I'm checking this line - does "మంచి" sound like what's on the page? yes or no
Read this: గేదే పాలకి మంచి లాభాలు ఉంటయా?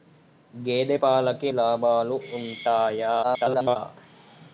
no